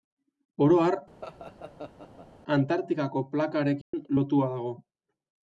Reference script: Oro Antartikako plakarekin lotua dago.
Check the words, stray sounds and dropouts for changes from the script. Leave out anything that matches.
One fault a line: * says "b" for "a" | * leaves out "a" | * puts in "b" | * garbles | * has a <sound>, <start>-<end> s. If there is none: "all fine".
* puts in "har"
* has a laugh, 1.2-2.3 s
* has a dropout, 3.8-3.9 s